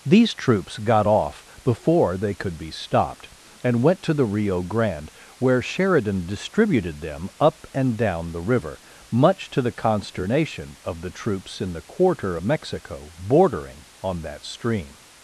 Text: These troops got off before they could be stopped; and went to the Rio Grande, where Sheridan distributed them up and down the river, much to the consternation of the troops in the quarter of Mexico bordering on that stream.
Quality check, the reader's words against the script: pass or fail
fail